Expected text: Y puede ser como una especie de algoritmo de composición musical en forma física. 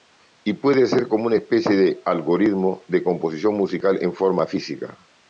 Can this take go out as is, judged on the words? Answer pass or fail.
pass